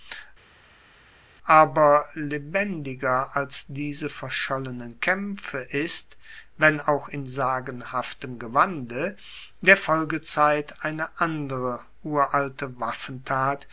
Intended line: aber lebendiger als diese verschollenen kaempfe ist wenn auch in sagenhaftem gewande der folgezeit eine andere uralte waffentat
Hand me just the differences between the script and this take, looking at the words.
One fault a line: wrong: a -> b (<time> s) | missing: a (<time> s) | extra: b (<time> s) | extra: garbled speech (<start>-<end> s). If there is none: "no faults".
no faults